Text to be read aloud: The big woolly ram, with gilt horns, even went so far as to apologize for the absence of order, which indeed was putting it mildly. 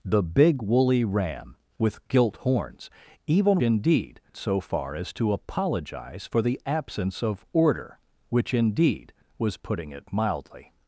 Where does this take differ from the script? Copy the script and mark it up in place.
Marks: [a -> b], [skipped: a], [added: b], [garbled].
The big woolly ram, with gilt horns, even [went -> indeed] so far as to apologize for the absence of order, which indeed was putting it mildly.